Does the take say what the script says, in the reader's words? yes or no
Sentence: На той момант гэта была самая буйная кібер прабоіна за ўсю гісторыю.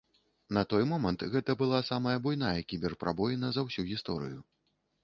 yes